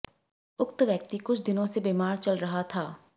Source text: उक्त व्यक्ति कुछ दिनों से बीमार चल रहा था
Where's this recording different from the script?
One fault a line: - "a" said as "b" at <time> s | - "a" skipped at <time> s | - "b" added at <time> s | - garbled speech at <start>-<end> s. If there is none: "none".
none